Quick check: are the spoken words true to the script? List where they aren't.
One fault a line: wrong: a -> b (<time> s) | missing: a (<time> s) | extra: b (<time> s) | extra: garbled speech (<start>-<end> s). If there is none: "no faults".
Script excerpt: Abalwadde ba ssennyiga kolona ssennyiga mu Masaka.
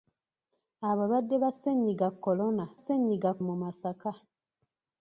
no faults